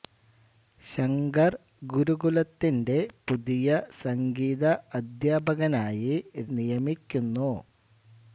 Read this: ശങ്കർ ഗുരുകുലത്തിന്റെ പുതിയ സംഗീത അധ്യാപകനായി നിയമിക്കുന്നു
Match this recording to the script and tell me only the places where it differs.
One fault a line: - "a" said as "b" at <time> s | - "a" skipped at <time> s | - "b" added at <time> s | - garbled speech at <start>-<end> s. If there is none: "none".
none